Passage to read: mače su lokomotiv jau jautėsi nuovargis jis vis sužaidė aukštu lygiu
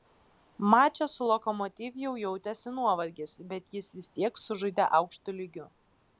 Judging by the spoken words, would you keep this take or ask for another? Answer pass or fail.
fail